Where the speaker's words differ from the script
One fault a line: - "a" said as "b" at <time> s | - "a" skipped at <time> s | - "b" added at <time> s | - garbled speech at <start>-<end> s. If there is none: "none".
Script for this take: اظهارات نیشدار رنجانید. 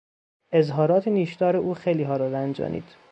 - "او خیلیها را" added at 1.6 s